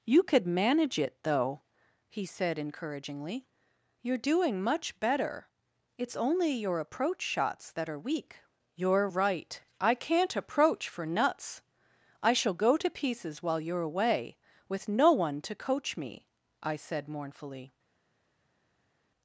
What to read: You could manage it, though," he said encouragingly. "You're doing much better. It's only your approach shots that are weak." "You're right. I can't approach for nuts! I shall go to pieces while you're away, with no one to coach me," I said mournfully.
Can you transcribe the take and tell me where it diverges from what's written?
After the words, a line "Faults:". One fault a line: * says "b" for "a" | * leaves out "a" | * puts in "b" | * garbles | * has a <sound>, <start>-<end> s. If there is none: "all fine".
You could manage it, though," he said encouragingly. "You're doing much better. It's only your approach shots that are weak." "You're right. I can't approach for nuts! I shall go to pieces while you're away, with no one to coach me," I said mournfully.
Faults:
all fine